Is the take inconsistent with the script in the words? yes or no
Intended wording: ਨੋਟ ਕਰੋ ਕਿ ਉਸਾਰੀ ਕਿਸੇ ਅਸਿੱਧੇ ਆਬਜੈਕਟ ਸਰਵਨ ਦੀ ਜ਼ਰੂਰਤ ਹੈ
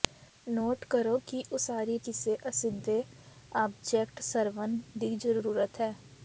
no